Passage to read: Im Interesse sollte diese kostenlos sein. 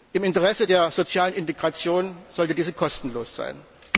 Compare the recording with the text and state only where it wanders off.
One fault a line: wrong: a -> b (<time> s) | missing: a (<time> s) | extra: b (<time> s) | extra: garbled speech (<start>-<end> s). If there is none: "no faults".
extra: der sozialen Integration (0.6 s)